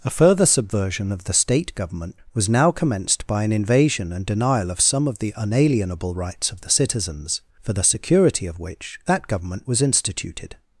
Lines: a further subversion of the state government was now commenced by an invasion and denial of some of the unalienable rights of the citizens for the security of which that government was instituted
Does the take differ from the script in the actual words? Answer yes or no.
no